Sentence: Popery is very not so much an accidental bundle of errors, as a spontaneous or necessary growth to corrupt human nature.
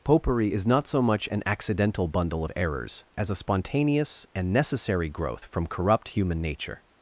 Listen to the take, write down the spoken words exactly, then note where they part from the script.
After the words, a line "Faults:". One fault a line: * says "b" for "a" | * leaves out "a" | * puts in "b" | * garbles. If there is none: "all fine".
Popery is not so much an accidental bundle of errors, as a spontaneous and necessary growth from corrupt human nature.
Faults:
* leaves out "very"
* says "and" for "or"
* says "from" for "to"